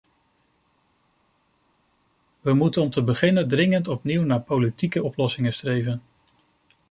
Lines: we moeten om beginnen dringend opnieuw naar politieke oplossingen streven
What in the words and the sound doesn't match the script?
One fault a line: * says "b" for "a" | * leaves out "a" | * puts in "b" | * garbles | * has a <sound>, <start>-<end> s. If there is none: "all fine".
* puts in "te"